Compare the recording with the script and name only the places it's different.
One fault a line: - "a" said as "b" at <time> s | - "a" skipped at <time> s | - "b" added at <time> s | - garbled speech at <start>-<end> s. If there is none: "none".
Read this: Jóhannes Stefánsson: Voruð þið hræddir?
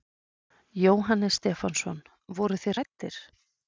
none